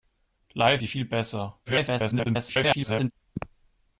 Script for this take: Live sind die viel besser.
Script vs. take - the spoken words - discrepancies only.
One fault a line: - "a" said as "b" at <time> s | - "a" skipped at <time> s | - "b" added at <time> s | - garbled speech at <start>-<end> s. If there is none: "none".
- "sind" skipped at 0.8 s
- garbled speech at 1.7-3.1 s